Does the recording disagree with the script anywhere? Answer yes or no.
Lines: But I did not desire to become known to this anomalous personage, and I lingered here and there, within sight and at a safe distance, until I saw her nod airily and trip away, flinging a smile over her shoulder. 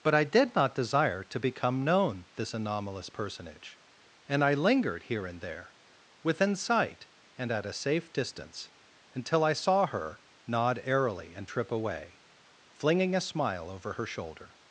yes